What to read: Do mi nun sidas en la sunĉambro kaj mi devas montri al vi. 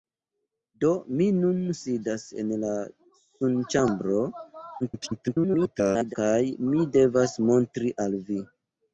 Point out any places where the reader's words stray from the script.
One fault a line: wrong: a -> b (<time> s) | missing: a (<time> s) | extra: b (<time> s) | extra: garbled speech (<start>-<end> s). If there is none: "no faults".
extra: garbled speech (4.8-6.2 s)